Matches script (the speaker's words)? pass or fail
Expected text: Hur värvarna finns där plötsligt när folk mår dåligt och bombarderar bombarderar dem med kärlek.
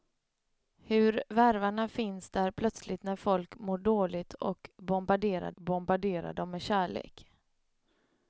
pass